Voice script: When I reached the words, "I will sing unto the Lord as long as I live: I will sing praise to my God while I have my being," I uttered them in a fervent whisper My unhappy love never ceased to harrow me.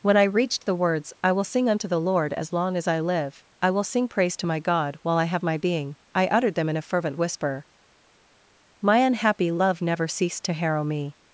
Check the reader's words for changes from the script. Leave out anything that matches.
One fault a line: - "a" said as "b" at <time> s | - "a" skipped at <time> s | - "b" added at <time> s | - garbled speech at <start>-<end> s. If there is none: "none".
none